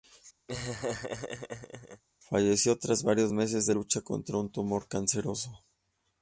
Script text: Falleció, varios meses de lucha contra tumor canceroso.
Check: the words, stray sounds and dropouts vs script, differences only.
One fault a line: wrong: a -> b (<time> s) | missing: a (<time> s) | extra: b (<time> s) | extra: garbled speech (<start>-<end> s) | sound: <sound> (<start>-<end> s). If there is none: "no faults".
sound: laugh (0.5-2.0 s)
extra: tras (2.8 s)
extra: un (4.4 s)